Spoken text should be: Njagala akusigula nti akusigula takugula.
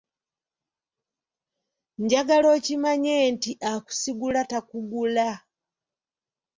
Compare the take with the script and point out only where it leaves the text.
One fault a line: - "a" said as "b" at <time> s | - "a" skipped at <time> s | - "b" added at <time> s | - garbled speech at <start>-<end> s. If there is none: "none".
- "akusigula" said as "okimanye" at 2.6 s